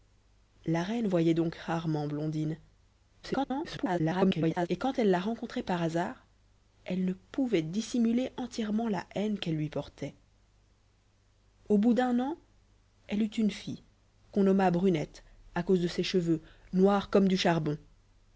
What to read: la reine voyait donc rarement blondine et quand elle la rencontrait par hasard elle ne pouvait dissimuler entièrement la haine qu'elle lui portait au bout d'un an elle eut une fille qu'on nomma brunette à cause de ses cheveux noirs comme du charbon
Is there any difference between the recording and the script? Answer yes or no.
yes